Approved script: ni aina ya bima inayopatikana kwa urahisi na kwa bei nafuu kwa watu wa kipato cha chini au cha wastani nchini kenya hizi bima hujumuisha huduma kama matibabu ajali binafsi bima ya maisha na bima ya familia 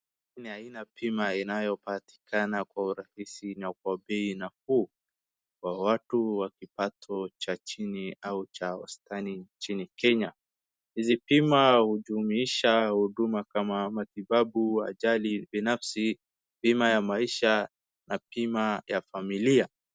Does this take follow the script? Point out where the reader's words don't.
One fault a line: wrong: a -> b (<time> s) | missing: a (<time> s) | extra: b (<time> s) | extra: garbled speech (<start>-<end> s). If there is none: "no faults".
no faults